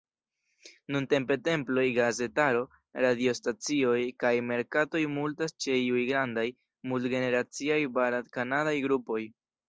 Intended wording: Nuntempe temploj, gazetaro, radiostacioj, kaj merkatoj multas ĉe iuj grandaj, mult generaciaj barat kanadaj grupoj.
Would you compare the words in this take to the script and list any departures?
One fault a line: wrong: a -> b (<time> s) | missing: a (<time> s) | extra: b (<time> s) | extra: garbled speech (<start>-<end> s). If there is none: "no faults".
no faults